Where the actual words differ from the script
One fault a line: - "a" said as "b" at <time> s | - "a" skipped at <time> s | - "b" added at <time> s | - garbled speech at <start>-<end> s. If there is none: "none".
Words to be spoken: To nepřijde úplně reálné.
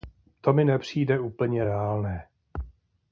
- "mi" added at 0.5 s